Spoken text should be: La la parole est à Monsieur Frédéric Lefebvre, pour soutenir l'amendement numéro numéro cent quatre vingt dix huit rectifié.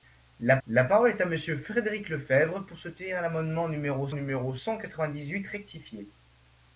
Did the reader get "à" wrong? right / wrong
right